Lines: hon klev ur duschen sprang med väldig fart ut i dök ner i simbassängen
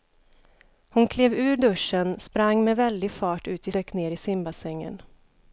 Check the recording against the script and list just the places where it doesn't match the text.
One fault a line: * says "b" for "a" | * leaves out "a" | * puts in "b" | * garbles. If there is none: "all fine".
all fine